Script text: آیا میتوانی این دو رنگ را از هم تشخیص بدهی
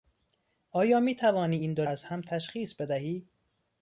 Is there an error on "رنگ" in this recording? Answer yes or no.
yes